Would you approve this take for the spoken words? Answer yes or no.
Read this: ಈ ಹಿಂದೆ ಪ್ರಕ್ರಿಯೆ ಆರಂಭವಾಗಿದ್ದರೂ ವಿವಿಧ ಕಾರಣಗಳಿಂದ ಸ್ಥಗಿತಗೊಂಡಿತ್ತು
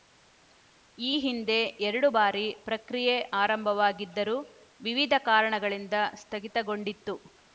no